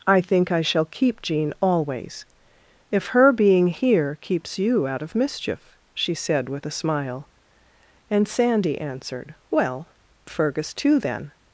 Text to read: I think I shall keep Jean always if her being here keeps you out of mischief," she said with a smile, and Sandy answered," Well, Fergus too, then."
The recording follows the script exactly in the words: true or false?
true